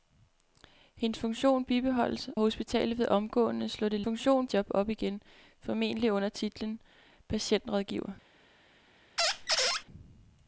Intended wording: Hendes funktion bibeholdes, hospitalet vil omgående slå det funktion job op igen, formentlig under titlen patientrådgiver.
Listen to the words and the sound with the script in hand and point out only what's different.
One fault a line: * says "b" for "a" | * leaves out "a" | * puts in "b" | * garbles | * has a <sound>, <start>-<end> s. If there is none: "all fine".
* has a squeak, 9.2-9.8 s